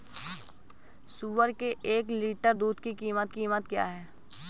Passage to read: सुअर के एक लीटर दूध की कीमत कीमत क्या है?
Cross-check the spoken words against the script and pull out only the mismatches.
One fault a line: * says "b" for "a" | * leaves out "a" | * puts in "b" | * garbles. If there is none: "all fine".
all fine